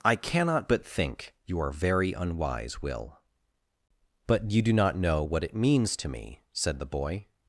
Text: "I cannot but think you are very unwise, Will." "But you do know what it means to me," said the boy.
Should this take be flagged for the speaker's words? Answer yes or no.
yes